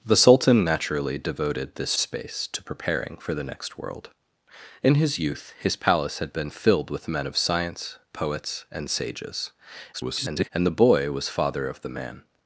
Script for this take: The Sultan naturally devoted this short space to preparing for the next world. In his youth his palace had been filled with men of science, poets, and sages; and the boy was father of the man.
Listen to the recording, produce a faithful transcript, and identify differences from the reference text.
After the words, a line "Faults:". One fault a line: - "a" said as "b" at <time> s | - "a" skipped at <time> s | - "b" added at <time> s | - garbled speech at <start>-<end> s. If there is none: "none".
The Sultan naturally devoted this space to preparing for the next world. In his youth his palace had been filled with men of science, poets, and sages; [garbled] and the boy was father of the man.
Faults:
- "short" skipped at 1.9 s
- garbled speech at 9.9-10.5 s